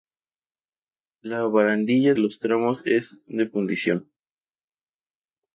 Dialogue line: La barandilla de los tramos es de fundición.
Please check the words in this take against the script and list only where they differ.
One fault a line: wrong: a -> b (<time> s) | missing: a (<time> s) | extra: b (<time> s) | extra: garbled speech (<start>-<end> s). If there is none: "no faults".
missing: de (2.1 s)